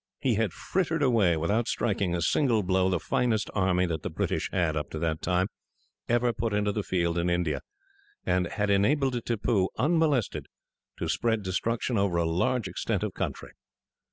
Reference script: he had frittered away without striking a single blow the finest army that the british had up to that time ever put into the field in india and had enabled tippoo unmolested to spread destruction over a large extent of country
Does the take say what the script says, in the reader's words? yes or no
yes